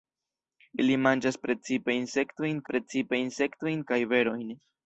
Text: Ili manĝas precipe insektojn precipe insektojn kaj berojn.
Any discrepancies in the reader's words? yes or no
no